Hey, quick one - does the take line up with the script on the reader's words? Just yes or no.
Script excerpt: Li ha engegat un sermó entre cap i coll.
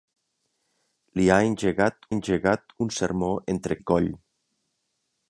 no